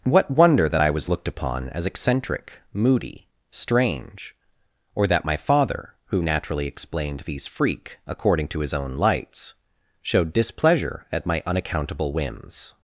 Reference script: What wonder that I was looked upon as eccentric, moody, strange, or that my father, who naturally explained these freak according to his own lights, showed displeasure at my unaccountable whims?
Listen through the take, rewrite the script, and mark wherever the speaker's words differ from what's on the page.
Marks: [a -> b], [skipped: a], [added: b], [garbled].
What wonder that I was looked upon as eccentric, moody, strange, or that my father, who naturally explained these freak according to his own lights, showed displeasure at my unaccountable whims?